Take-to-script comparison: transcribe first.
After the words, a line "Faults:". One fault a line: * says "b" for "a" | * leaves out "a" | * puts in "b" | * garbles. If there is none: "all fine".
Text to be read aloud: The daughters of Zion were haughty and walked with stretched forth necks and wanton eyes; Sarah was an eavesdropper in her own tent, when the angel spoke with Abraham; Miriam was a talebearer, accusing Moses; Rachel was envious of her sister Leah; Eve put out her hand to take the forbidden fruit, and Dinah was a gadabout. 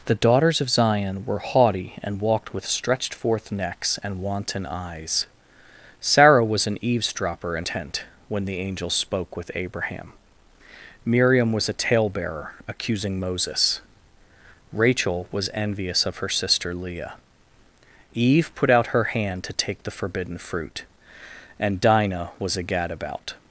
The daughters of Zion were haughty and walked with stretched forth necks and wanton eyes; Sarah was an eavesdropper in tent, when the angel spoke with Abraham; Miriam was a talebearer, accusing Moses; Rachel was envious of her sister Leah; Eve put out her hand to take the forbidden fruit, and Dinah was a gadabout.
Faults:
* leaves out "her own"